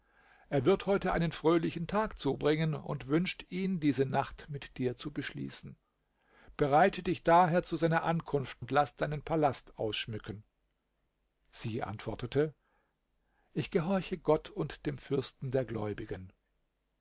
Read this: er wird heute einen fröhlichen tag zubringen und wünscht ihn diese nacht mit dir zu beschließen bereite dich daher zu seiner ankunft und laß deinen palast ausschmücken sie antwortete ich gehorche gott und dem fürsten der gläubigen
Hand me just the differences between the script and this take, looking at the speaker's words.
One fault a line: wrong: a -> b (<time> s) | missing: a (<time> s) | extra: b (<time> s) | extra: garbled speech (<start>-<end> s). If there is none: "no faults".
no faults